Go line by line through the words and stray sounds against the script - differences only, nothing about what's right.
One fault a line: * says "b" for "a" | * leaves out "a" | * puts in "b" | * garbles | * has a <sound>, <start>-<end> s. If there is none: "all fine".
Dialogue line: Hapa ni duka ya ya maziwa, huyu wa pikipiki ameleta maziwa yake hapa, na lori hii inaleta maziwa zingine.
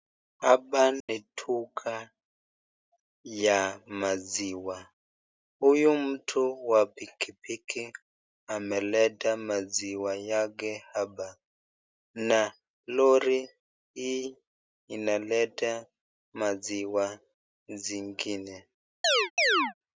* has a dropout, 1.0-1.1 s
* leaves out "ya"
* puts in "mtu"
* has a chirp, 19.0-19.7 s